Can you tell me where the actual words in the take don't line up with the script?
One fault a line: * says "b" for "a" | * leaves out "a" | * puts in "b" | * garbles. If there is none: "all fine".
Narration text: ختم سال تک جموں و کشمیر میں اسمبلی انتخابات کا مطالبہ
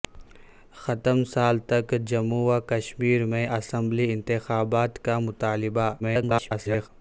* garbles